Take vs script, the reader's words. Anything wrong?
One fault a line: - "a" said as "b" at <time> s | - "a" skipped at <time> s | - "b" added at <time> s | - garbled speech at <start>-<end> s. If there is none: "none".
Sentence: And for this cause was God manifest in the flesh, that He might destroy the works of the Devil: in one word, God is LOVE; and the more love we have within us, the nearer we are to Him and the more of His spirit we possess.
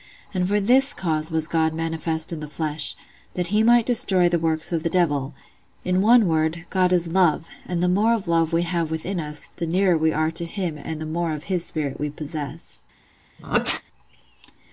- "of" added at 8.1 s